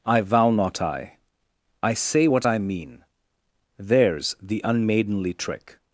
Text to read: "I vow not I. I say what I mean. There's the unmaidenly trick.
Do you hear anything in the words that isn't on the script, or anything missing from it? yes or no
no